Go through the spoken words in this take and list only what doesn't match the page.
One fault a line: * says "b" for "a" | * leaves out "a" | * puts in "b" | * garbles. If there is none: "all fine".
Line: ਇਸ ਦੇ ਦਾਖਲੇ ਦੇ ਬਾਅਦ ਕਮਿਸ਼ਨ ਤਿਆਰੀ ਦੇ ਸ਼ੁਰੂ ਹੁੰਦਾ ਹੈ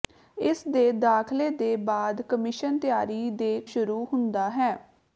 all fine